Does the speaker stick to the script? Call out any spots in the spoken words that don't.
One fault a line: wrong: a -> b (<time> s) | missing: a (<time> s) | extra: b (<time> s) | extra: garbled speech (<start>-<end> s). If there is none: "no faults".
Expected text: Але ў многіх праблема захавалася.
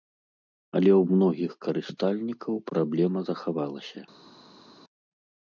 extra: карыстальнікаў (1.7 s)